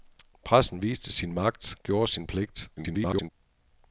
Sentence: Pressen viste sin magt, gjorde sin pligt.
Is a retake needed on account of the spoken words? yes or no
yes